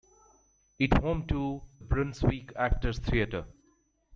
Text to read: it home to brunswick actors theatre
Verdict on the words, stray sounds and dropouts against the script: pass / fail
pass